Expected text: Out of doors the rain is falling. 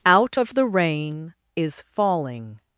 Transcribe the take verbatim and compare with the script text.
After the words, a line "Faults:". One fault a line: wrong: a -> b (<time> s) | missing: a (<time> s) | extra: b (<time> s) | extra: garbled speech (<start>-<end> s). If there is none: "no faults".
Out of the rain is falling.
Faults:
missing: doors (0.5 s)